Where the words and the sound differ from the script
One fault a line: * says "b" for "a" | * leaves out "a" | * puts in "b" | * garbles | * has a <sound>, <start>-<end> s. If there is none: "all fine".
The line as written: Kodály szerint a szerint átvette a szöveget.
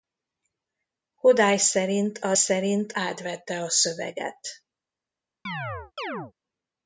* has a chirp, 5.5-6.3 s